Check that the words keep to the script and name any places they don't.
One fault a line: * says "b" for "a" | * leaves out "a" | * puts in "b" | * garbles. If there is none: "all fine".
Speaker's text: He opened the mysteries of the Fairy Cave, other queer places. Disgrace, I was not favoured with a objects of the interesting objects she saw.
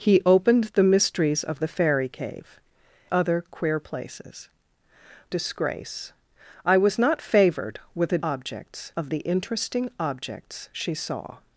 all fine